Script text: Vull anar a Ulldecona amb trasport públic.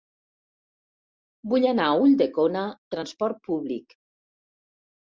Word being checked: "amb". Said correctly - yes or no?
no